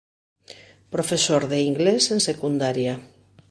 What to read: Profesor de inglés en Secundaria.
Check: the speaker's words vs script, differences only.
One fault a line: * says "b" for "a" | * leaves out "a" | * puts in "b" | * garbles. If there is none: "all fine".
all fine